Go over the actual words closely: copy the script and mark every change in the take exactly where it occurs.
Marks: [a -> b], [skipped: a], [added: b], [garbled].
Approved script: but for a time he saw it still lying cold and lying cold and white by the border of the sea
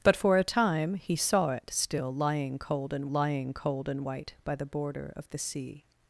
but for a time he saw it still lying cold and lying cold and white by the border of the sea